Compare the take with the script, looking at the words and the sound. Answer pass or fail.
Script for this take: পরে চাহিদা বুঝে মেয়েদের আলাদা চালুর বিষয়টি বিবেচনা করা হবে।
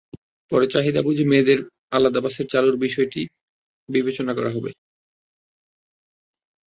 fail